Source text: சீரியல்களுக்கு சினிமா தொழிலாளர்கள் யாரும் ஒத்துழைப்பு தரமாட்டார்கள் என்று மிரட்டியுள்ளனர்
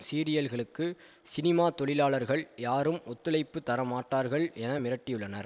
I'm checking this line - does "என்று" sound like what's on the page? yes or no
no